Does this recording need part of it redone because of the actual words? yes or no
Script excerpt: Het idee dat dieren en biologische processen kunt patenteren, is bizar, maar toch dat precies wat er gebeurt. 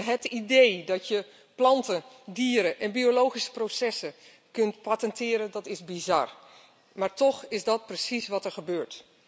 yes